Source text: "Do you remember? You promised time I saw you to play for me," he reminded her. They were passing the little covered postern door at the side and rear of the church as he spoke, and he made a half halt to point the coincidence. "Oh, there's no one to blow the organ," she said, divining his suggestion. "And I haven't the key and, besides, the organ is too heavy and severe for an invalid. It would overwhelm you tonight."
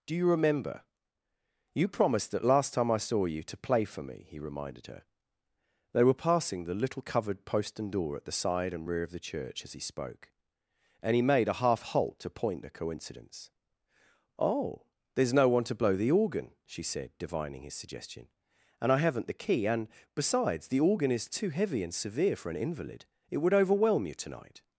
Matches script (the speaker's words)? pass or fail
fail